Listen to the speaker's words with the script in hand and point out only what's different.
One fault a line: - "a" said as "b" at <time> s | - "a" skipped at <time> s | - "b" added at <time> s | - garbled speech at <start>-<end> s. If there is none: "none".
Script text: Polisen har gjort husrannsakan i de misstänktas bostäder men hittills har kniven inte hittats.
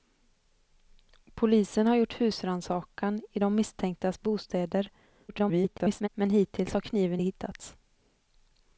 - garbled speech at 5.3-6.1 s
- "inte" skipped at 7.2 s